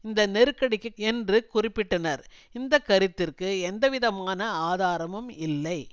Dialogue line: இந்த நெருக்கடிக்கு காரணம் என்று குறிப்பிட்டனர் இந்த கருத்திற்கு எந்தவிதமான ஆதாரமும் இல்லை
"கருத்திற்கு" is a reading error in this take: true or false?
false